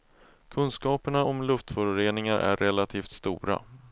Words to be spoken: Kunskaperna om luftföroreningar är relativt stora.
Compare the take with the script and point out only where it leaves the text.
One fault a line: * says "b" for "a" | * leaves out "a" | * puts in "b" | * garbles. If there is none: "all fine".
all fine